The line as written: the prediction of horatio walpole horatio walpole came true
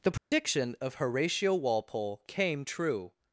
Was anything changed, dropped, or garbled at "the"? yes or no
no